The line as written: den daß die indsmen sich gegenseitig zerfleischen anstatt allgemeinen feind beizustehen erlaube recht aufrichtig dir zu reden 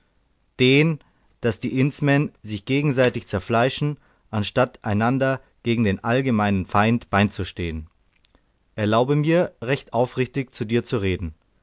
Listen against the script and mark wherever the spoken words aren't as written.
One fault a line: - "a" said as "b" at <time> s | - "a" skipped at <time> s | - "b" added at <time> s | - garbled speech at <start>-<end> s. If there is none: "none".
- "einander gegen den" added at 4.8 s
- "mir" added at 9.2 s
- "zu" added at 10.5 s